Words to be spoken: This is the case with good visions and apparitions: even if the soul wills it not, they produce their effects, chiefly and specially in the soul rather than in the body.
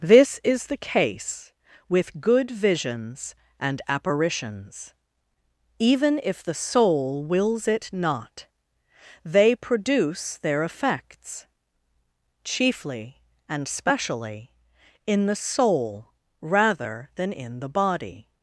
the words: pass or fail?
pass